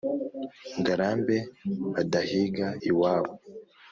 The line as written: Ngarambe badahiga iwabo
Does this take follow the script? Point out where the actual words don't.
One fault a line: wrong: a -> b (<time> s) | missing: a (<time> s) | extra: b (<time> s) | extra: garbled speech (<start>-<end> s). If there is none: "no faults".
no faults